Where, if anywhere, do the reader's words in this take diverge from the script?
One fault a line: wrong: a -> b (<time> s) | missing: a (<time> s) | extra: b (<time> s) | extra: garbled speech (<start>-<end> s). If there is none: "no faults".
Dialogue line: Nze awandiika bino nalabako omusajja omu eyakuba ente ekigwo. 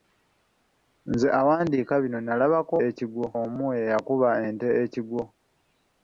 wrong: omusajja -> ekigwo (2.9 s)